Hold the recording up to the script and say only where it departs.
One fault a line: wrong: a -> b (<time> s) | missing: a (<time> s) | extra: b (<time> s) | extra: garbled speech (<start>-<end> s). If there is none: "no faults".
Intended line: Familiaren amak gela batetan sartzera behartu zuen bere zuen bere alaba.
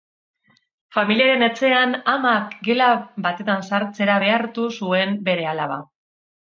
extra: etxean (1.5 s)
missing: zuen bere (5.5 s)